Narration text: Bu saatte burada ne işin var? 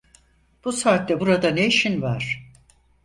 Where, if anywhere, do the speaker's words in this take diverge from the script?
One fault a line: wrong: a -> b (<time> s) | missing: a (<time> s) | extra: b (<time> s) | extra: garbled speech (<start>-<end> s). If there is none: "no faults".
no faults